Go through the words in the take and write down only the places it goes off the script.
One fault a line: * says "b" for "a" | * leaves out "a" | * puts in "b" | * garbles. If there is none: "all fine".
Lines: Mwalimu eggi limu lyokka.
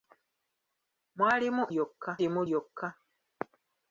* says "lyokka" for "eggi"